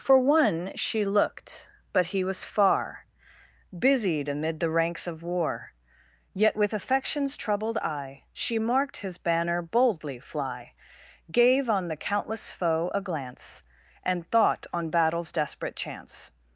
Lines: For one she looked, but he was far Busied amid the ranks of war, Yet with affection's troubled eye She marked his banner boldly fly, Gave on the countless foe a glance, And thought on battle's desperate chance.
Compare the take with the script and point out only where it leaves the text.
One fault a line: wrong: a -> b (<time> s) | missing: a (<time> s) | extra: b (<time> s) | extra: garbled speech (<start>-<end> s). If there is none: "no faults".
no faults